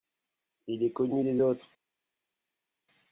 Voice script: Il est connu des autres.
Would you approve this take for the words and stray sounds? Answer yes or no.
yes